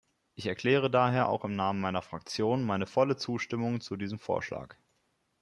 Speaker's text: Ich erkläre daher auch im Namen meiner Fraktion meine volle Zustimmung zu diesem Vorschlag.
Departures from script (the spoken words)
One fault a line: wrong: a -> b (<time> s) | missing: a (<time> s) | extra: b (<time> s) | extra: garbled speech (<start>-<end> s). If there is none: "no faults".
no faults